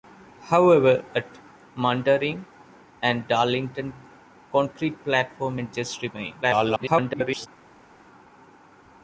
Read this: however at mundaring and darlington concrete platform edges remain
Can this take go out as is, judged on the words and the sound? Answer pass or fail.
fail